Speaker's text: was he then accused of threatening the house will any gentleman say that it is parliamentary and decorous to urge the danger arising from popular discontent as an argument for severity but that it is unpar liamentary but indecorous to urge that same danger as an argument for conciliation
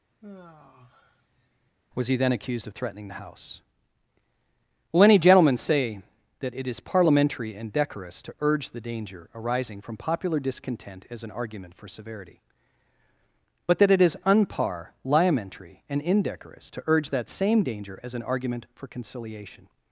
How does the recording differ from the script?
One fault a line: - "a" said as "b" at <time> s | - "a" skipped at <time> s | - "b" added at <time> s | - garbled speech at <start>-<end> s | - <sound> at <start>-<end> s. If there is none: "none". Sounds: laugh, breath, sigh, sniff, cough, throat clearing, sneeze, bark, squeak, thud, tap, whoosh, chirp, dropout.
- sigh at 0.2-1.7 s
- "but" said as "and" at 15.9 s